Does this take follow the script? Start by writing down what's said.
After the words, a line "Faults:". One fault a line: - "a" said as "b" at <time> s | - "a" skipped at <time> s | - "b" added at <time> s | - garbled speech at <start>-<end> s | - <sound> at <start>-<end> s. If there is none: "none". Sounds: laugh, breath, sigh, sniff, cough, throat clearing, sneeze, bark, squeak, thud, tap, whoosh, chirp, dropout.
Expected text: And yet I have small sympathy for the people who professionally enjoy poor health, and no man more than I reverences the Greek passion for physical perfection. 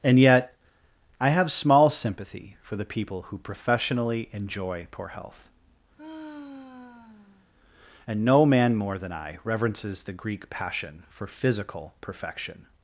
And yet I have small sympathy for the people who professionally enjoy poor health, and no man more than I reverences the Greek passion for physical perfection.
Faults:
- sigh at 6.0-7.5 s